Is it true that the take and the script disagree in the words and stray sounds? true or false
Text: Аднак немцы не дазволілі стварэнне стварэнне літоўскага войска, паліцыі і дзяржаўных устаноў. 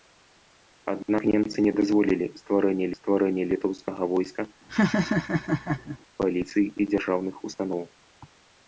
true